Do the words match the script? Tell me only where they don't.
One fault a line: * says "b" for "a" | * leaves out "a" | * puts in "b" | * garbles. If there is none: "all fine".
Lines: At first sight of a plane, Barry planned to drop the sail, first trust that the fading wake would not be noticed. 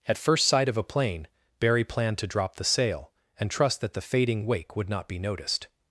* says "and" for "first"